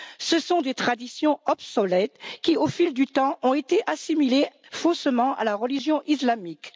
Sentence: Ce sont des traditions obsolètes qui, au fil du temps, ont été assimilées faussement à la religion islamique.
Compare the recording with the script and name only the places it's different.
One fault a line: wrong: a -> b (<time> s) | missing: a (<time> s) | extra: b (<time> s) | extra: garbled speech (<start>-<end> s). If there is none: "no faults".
no faults